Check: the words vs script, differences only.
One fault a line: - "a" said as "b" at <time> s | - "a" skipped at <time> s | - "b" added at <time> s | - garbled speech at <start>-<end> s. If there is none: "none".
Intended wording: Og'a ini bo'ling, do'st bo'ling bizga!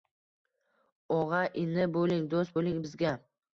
none